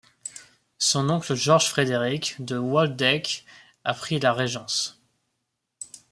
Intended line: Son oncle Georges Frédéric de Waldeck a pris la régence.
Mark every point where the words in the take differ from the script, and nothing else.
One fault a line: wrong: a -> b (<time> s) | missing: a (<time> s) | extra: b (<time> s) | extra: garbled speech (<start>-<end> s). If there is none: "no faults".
no faults